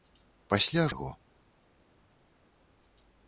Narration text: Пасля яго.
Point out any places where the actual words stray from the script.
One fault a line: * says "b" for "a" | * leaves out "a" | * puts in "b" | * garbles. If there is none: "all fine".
all fine